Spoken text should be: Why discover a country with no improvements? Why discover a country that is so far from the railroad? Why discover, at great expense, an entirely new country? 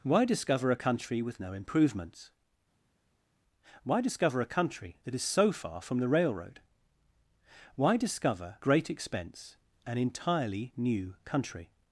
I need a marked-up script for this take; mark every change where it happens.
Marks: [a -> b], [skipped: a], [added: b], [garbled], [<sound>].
Why discover a country with no improvements? Why discover a country that is so far from the railroad? Why discover, [skipped: at] great expense, an entirely new country?